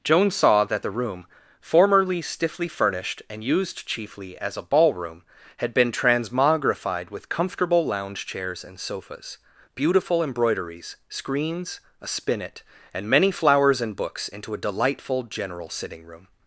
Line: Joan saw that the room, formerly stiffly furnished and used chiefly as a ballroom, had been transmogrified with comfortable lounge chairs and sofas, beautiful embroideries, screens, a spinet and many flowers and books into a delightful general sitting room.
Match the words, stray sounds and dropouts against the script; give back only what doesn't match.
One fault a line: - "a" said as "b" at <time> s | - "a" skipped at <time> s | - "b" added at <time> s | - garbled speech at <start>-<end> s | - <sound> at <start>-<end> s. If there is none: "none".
none